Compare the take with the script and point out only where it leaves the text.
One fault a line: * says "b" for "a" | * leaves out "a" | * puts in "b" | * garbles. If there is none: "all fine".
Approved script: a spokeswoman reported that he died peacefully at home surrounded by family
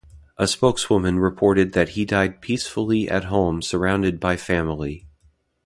all fine